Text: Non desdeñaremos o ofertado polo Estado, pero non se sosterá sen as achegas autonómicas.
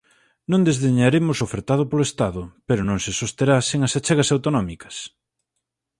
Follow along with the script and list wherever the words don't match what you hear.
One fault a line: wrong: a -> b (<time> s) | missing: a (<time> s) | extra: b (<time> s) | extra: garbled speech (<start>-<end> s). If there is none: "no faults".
no faults